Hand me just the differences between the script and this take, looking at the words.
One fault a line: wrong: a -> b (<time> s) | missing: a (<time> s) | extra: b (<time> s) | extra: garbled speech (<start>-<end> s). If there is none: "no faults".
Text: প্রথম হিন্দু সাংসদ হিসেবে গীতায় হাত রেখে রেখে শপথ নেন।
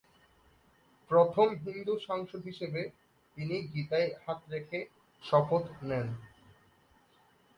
extra: তিনি (3.4 s)
missing: রেখে (4.8 s)